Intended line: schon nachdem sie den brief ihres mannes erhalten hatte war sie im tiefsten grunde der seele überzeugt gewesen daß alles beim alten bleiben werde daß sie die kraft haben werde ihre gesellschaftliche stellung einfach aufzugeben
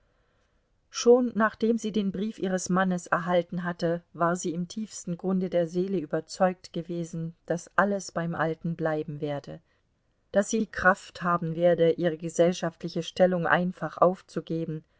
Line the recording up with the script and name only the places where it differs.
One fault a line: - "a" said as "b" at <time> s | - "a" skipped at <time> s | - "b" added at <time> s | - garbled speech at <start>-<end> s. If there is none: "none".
none